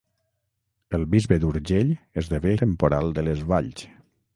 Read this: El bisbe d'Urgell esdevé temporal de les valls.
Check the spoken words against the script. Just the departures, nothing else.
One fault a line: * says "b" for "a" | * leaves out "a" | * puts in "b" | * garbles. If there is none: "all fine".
all fine